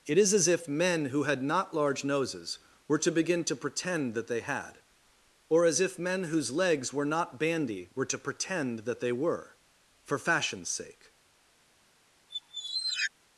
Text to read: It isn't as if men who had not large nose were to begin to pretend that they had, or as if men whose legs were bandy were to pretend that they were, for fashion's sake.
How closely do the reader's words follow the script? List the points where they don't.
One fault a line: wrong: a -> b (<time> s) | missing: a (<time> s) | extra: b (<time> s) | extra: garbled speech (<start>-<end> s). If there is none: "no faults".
wrong: isn't -> is (0.2 s)
wrong: nose -> noses (2.0 s)
extra: not (7.0 s)